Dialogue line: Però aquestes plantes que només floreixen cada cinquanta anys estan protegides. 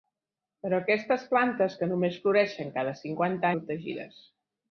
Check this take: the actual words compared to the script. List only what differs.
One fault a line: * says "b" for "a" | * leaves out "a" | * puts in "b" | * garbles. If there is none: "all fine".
* leaves out "anys estan"